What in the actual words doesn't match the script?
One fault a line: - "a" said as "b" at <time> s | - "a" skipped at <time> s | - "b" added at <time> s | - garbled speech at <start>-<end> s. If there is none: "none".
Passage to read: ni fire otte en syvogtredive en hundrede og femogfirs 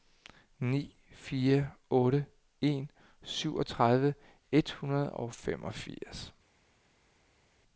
- "en" said as "et" at 4.5 s